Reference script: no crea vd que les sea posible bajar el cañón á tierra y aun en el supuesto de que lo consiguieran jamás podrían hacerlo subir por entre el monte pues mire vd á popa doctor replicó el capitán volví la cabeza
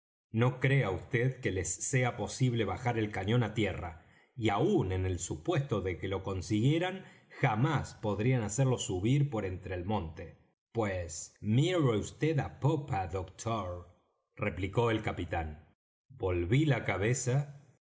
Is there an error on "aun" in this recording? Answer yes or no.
no